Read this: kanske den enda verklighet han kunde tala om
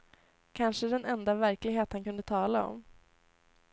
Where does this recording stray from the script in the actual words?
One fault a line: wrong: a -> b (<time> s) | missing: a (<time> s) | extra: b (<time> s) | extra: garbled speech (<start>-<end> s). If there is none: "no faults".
no faults